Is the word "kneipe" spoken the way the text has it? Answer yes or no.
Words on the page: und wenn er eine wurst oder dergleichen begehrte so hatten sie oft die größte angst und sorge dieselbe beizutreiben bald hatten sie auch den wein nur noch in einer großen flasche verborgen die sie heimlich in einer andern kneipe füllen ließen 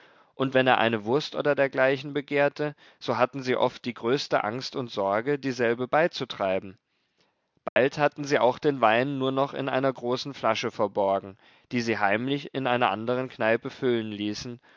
yes